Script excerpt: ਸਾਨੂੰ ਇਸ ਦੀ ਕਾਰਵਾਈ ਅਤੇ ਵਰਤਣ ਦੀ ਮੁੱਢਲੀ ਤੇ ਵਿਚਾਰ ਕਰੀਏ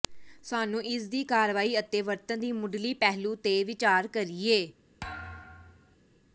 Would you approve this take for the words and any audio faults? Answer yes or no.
no